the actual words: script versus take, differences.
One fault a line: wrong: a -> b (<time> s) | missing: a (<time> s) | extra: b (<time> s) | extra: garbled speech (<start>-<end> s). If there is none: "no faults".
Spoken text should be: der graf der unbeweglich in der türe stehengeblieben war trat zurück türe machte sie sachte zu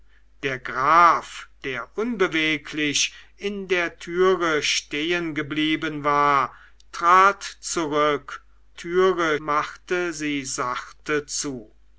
no faults